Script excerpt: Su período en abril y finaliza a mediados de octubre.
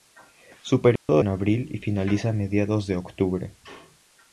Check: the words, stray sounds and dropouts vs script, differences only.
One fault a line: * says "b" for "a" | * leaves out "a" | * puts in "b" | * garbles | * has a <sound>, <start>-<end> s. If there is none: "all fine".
* has a dropout, 1.0-1.1 s